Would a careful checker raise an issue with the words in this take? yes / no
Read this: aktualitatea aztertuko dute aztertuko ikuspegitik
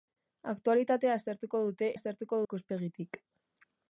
no